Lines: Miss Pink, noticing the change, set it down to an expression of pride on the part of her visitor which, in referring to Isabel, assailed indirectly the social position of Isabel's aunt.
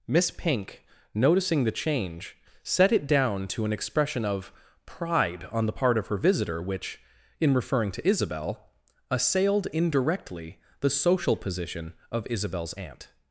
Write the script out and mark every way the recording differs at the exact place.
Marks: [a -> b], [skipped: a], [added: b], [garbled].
Miss Pink, noticing the change, set it down to an expression of pride on the part of her visitor which, in referring to Isabel, assailed indirectly the social position of Isabel's aunt.